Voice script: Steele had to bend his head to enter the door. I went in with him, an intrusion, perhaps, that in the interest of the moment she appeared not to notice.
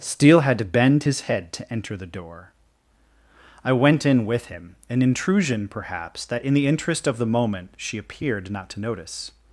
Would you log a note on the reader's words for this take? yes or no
no